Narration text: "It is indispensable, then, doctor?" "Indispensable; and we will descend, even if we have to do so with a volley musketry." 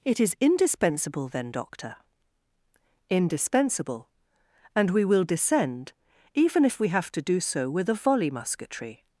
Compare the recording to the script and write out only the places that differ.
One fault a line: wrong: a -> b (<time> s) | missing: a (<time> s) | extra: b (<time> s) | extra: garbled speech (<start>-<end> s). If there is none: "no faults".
no faults